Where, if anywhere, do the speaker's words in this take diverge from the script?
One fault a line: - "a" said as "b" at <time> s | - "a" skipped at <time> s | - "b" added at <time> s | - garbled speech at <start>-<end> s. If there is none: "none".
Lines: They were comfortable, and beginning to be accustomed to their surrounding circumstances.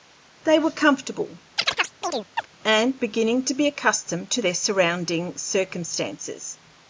none